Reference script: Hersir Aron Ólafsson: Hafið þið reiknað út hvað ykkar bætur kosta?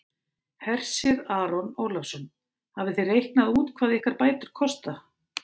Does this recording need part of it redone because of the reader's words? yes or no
no